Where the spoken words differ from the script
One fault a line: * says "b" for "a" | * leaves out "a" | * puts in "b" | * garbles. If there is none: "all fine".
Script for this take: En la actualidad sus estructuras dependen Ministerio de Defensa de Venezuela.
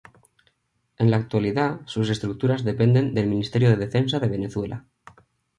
* puts in "del"